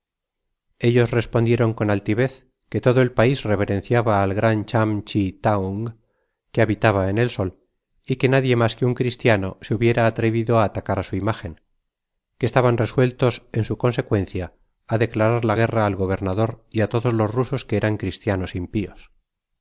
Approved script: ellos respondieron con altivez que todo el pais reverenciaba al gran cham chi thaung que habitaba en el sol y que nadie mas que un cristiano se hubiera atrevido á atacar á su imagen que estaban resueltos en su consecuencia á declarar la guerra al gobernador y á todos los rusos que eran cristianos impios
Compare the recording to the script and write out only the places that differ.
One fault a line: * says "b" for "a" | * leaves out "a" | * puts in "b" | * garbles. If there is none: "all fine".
all fine